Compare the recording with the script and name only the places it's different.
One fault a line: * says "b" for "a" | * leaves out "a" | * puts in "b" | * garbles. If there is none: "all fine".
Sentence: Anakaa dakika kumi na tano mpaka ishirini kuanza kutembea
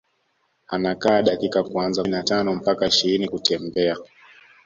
* says "kuanza" for "kumi"
* leaves out "kuanza"